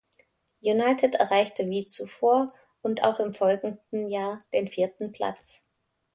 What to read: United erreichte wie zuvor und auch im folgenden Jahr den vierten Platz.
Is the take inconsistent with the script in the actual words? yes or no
no